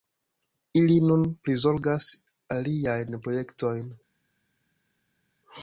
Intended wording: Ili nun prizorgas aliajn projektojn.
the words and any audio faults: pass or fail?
pass